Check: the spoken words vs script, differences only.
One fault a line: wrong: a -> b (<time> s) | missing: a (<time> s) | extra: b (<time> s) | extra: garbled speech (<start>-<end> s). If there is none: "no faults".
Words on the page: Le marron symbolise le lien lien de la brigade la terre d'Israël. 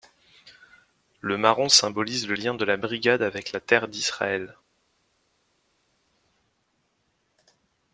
missing: lien (2.5 s)
extra: avec (3.2 s)